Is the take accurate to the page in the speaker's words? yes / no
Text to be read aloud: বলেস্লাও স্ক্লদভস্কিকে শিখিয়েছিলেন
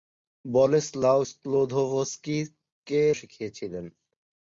yes